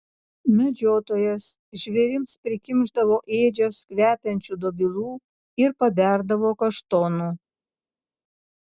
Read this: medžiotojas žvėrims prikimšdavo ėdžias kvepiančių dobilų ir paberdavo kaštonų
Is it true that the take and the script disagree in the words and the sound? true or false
false